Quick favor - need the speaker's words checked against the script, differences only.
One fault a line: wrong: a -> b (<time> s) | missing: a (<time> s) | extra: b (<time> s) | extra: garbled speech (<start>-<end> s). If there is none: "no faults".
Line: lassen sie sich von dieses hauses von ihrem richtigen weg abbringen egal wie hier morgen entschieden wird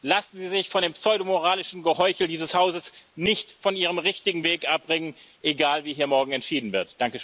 extra: dem pseudomoralischen geheuchel (0.8 s)
extra: nicht (3.1 s)